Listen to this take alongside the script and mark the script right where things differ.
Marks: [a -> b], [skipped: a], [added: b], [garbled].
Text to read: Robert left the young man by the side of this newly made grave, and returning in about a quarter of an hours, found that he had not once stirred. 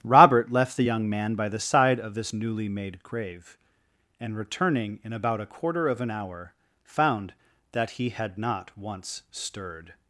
Robert left the young man by the side of this newly made grave, and returning in about a quarter of an [hours, -> hour] found that he had not once stirred.